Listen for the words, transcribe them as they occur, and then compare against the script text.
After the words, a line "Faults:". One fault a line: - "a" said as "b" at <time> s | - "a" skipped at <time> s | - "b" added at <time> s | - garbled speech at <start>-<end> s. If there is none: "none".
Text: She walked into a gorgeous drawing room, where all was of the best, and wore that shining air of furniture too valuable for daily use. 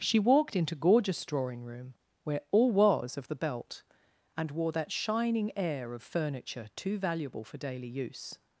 She walked into gorgeous drawing room, where all was of the belt, and wore that shining air of furniture too valuable for daily use.
Faults:
- "a" skipped at 0.7 s
- "best" said as "belt" at 3.4 s